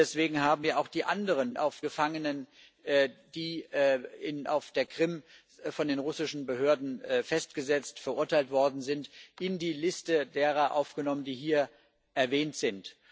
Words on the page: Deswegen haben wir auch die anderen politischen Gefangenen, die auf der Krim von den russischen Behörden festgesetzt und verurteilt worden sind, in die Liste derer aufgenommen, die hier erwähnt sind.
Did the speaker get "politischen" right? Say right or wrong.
wrong